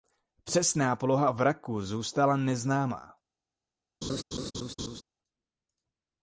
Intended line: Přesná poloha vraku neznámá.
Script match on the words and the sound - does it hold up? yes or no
no